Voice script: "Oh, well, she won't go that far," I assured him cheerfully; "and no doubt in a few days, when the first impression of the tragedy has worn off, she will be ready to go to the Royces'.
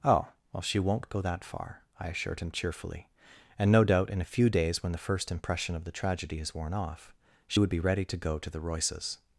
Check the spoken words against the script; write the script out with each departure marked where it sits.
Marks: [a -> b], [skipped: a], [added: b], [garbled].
"Oh, well, she won't go that far," I assured him cheerfully; "and no doubt in a few days, when the first impression of the tragedy has worn off, she [will -> would] be ready to go to the Royces'.